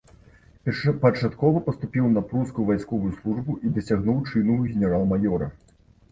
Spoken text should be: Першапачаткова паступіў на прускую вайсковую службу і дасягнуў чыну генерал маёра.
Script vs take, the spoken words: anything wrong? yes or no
no